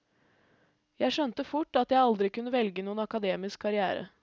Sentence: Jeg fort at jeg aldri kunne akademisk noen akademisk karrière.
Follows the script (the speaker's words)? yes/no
no